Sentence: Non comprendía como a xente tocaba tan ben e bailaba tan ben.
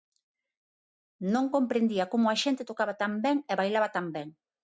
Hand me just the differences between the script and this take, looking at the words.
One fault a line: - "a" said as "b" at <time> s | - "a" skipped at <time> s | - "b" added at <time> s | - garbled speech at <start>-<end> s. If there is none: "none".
none